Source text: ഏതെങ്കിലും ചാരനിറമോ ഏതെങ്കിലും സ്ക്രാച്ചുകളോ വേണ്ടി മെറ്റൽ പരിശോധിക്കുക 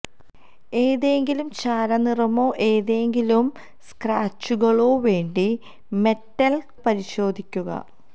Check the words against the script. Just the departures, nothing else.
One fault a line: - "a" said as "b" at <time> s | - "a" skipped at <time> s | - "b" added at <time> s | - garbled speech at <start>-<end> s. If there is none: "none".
none